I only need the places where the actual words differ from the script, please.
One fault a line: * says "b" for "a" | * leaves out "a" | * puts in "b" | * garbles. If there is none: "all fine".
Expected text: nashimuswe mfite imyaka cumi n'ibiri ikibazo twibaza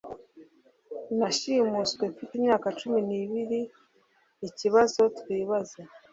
all fine